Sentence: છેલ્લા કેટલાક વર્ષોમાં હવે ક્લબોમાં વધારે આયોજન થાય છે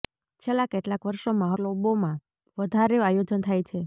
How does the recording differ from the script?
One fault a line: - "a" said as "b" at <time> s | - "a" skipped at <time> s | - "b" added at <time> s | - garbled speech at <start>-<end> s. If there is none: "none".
- "હવે" skipped at 1.5 s